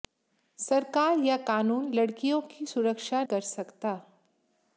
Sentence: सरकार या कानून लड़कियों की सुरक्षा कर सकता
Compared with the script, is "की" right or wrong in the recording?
right